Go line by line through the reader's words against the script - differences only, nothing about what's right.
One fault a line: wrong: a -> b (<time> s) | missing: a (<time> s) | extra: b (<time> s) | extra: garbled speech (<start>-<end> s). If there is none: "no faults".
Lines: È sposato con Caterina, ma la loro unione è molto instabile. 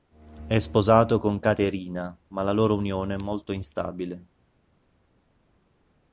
no faults